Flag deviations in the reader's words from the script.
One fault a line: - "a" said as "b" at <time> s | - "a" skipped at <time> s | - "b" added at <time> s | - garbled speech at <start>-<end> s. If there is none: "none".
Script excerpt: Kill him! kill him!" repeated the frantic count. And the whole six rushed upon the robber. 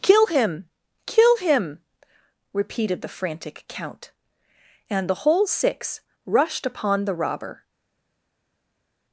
none